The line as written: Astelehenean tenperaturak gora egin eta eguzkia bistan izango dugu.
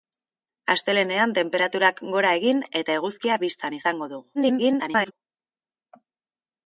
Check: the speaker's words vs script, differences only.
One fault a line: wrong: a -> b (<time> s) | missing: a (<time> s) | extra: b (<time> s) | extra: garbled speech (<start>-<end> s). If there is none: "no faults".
extra: garbled speech (4.3-5.1 s)